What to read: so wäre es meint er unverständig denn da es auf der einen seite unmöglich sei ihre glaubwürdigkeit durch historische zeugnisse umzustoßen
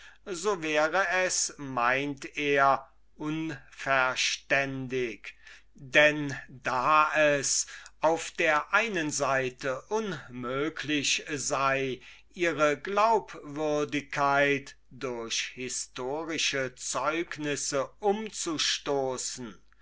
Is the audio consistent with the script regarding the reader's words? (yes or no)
yes